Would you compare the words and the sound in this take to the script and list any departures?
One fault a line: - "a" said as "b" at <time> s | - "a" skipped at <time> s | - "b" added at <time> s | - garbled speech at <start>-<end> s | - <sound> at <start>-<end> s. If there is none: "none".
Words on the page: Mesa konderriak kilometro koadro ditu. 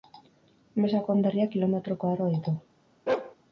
- bark at 3.1-3.4 s